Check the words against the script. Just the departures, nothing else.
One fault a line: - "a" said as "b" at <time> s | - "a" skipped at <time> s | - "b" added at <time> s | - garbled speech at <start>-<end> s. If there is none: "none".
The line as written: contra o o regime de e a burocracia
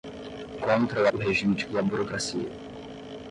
none